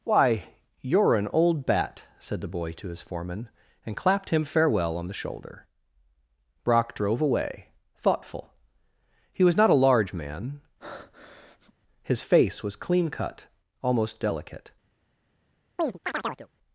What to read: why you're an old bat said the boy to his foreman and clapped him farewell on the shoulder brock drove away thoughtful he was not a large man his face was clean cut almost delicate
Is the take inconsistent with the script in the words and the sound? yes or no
yes